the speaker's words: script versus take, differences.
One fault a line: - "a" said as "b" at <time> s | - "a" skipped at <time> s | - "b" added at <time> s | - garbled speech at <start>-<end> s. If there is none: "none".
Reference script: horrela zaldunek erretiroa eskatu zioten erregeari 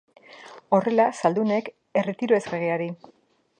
- "eskatu zioten" skipped at 2.4 s